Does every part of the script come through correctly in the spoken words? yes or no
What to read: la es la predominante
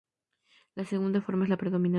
no